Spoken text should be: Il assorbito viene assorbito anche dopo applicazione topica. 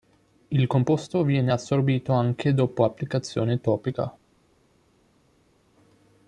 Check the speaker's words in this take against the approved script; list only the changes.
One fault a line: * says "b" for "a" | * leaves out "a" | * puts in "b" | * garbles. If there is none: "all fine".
* says "composto" for "assorbito"